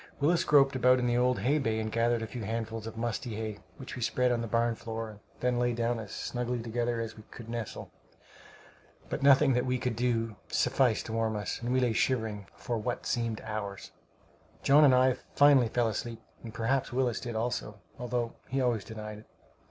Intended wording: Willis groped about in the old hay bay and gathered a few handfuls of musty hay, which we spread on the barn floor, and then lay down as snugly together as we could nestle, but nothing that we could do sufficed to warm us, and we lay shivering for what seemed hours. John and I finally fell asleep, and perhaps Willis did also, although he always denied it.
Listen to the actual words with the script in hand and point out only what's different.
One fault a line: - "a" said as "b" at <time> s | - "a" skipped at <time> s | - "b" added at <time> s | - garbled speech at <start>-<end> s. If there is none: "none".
none